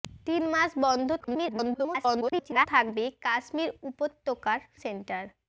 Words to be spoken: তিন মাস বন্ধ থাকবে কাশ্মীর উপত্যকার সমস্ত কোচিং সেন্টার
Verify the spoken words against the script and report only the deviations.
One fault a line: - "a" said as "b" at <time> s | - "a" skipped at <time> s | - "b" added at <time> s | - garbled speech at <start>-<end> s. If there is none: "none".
- garbled speech at 1.2-2.7 s
- "সমস্ত কোচিং" skipped at 4.6 s